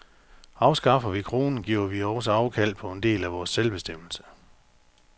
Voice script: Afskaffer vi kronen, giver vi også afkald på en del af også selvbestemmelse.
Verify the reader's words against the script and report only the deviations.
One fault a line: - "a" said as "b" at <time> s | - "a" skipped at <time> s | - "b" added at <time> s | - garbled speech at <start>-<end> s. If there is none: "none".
- "også" said as "vores" at 3.3 s